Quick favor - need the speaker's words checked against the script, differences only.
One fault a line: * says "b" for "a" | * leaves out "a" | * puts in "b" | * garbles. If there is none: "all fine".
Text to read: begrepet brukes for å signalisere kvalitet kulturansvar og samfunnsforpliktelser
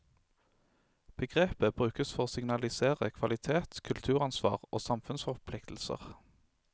all fine